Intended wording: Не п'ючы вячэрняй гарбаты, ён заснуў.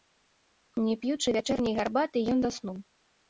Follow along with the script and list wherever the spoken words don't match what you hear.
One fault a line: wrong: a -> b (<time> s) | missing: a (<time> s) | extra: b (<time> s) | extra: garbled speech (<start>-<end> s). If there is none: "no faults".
no faults